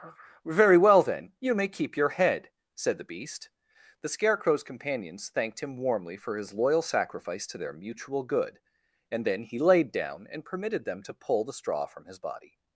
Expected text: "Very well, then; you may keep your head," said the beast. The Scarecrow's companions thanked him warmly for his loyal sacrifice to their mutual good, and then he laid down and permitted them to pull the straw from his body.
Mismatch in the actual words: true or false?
false